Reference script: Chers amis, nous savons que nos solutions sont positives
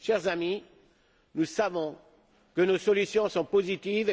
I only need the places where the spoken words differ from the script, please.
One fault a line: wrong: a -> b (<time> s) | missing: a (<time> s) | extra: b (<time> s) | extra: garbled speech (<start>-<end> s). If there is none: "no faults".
no faults